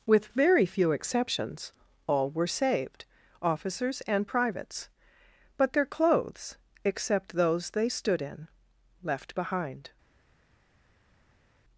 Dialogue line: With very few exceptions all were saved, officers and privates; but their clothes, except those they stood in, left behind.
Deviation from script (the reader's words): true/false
false